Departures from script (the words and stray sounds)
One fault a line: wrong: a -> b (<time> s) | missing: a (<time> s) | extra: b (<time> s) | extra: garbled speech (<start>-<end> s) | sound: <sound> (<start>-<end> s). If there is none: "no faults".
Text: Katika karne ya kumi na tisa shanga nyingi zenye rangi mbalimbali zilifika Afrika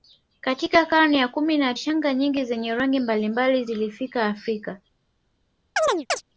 missing: tisa (1.7 s)
sound: chirp (5.8-6.2 s)